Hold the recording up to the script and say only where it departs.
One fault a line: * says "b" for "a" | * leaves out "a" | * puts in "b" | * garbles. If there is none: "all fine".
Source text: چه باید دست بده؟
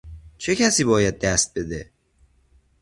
* puts in "کسی"